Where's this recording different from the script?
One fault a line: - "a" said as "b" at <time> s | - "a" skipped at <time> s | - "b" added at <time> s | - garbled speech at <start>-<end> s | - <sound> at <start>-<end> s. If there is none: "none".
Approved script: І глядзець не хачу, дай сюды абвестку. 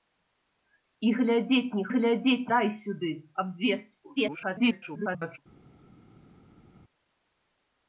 - "хачу" said as "глядзець" at 1.9 s
- garbled speech at 4.2-5.4 s